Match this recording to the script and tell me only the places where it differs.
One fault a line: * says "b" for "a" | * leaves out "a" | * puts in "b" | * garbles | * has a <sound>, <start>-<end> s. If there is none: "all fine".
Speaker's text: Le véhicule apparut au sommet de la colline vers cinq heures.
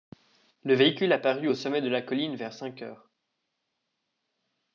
all fine